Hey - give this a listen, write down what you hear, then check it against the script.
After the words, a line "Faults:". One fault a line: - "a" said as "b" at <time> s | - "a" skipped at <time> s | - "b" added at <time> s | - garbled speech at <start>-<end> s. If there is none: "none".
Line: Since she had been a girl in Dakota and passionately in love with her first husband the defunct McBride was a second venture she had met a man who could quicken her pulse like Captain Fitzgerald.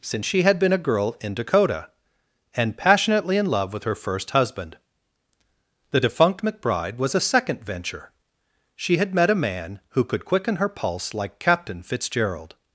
Since she had been a girl in Dakota and passionately in love with her first husband the defunct McBride was a second venture she had met a man who could quicken her pulse like Captain Fitzgerald.
Faults:
none